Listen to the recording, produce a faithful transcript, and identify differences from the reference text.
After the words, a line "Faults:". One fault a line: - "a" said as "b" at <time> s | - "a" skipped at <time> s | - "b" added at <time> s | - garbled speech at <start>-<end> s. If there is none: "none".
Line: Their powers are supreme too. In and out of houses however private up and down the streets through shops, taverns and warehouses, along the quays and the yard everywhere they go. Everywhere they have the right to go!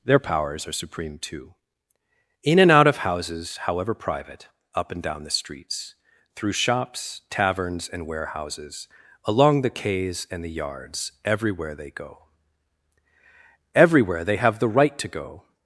Their powers are supreme too. In and out of houses however private up and down the streets through shops, taverns and warehouses, along the quays and the yards everywhere they go. Everywhere they have the right to go!
Faults:
- "yard" said as "yards" at 10.5 s